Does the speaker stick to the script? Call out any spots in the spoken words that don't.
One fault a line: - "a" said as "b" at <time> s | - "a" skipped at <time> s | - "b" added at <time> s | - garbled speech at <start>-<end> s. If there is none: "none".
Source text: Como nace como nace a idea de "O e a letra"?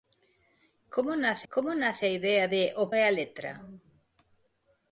none